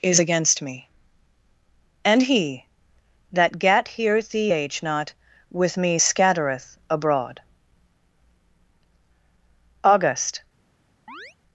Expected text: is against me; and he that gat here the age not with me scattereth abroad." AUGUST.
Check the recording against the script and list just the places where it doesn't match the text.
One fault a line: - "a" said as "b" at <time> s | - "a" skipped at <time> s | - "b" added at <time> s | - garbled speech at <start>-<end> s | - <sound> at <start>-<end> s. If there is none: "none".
- chirp at 11.1-11.4 s